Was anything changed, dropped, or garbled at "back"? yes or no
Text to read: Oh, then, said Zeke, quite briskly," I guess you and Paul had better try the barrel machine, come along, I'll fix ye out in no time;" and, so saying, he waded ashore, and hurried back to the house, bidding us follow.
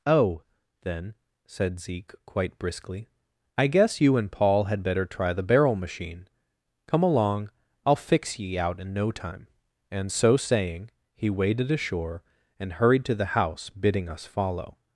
yes